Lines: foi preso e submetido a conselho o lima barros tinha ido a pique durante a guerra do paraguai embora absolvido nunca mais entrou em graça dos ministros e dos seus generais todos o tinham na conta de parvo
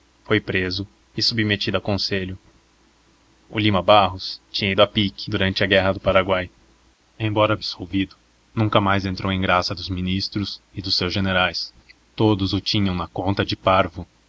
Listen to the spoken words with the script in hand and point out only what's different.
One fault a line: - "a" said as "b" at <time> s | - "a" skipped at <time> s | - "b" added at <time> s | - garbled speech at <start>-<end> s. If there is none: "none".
none